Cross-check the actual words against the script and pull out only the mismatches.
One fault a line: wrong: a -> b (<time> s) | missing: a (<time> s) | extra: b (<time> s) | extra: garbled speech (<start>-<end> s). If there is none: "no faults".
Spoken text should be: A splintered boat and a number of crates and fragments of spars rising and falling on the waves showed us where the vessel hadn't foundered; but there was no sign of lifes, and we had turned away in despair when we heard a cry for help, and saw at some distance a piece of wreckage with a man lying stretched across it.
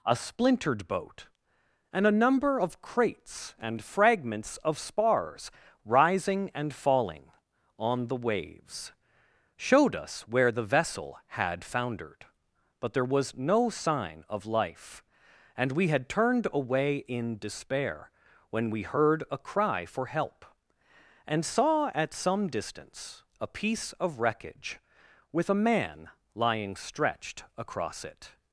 wrong: hadn't -> had (11.3 s)
wrong: lifes -> life (14.5 s)